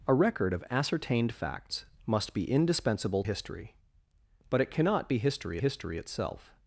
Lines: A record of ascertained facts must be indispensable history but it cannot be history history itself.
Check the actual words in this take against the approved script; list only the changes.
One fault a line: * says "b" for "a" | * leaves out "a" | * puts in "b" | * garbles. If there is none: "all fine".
all fine